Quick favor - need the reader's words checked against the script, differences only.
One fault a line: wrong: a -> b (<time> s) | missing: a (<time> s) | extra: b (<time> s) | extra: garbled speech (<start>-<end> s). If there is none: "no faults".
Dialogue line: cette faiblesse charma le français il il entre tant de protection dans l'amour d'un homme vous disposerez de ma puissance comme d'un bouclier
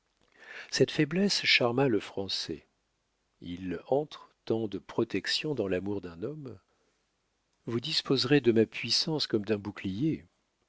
missing: il (3.8 s)